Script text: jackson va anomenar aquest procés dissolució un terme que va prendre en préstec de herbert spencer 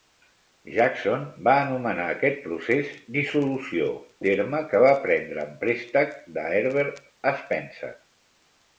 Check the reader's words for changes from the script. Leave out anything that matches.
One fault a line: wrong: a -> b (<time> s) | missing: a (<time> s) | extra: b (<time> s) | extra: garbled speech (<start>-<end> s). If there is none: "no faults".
missing: un (3.9 s)